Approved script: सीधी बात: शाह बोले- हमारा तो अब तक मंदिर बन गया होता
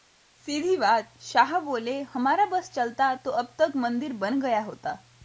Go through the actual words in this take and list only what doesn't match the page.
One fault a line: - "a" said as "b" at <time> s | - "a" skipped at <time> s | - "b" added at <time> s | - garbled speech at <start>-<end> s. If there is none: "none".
- "बस चलता" added at 2.5 s